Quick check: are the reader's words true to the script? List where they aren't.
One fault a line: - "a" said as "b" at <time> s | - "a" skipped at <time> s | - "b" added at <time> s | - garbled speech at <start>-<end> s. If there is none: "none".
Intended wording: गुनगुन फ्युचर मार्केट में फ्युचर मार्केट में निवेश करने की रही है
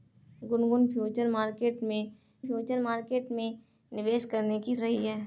none